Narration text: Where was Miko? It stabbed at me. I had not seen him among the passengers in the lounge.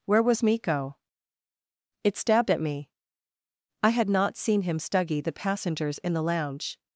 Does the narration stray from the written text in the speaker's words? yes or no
yes